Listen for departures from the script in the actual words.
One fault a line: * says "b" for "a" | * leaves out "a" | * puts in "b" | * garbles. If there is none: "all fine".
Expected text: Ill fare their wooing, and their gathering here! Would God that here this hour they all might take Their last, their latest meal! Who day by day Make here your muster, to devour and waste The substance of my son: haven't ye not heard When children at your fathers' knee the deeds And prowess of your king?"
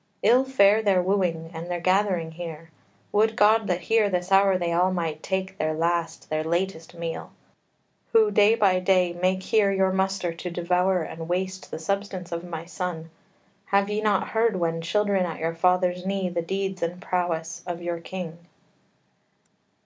* says "have" for "haven't"